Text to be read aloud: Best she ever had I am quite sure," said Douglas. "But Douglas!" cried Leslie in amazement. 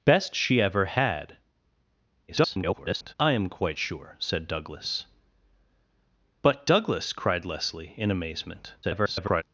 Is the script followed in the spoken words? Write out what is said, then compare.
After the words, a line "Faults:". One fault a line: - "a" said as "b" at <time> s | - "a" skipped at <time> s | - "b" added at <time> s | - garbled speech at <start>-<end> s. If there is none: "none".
Best she ever had [garbled] I am quite sure," said Douglas. "But Douglas!" cried Leslie in amazement. [garbled]
Faults:
- garbled speech at 2.3-3.1 s
- garbled speech at 8.8-9.4 s